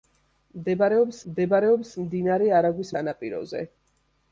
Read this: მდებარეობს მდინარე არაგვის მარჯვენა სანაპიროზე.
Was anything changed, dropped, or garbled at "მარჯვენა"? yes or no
yes